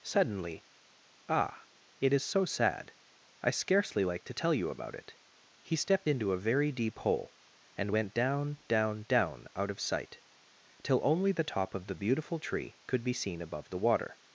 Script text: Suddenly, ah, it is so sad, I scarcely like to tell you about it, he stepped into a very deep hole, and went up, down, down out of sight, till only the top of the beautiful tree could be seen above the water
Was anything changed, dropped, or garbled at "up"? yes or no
yes